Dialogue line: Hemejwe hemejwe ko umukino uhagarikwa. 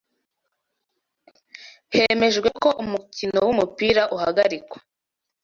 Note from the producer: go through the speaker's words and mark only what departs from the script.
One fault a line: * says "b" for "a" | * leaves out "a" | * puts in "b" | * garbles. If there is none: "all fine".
* leaves out "hemejwe"
* puts in "wumupira"